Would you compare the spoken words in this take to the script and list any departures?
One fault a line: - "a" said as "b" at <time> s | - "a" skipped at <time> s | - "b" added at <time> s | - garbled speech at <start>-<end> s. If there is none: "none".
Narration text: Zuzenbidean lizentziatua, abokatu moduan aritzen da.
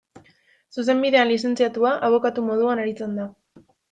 none